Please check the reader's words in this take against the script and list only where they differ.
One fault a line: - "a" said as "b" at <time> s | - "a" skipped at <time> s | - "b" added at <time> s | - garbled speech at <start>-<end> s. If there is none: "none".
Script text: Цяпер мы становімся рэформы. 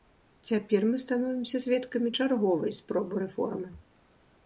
- "сведкамі чарговай спробы" added at 1.6 s